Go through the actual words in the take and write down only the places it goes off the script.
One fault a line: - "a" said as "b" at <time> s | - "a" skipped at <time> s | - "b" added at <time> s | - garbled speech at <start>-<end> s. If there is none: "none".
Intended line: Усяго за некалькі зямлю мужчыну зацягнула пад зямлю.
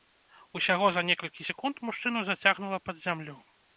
- "зямлю" said as "секунд" at 1.5 s